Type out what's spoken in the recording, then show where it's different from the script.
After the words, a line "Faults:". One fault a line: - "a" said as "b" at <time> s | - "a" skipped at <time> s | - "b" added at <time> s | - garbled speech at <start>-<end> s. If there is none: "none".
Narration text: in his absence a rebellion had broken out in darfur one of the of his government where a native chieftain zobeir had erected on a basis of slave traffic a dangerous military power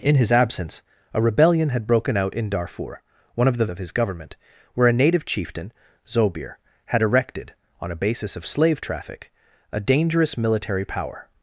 in his absence a rebellion had broken out in darfur one of the of his government where a native chieftain zobeir had erected on a basis of slave traffic a dangerous military power
Faults:
none